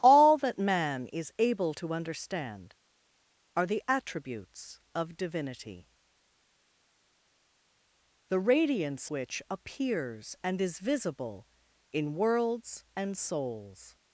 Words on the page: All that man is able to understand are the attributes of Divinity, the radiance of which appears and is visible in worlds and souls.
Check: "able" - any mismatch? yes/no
no